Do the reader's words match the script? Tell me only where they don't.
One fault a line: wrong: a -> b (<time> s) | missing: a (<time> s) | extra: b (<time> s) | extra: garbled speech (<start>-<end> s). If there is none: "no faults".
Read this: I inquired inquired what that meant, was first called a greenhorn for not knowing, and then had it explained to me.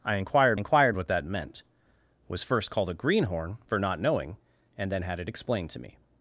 no faults